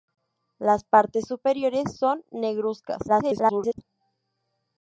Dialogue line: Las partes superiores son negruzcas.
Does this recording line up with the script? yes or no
no